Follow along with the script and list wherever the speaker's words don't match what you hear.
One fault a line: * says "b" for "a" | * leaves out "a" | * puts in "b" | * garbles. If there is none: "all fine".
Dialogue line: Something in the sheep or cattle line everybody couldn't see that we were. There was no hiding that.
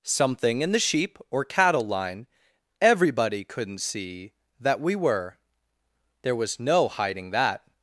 all fine